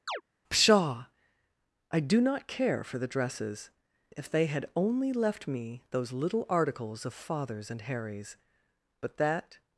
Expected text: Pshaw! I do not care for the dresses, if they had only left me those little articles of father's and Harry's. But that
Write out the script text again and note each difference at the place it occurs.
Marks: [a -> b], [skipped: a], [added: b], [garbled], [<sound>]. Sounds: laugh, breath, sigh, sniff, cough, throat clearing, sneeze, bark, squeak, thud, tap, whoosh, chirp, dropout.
[chirp] Pshaw! I do not care for the dresses, if they had only left me those little articles of father's and Harry's. But that